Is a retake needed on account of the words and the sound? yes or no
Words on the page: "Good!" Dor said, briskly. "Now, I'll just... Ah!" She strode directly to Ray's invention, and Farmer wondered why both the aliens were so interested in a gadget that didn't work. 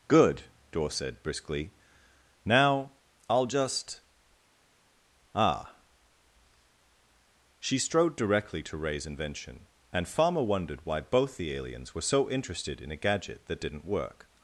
no